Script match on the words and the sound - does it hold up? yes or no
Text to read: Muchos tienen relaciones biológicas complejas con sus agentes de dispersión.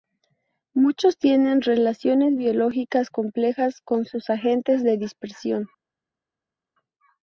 yes